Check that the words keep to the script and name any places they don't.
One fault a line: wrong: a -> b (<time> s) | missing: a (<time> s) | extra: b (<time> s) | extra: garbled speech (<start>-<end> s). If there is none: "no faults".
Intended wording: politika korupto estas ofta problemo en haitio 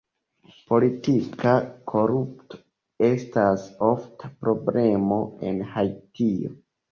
no faults